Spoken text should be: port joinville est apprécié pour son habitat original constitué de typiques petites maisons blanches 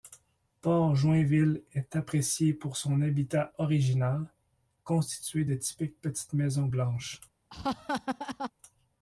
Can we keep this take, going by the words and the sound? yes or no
no